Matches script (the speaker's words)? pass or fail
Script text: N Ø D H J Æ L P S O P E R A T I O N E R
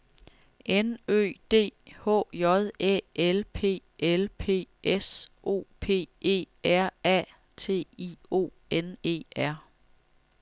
fail